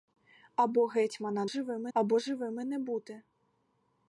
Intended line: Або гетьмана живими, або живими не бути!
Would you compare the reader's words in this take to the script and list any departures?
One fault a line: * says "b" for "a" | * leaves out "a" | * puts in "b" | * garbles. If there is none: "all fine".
all fine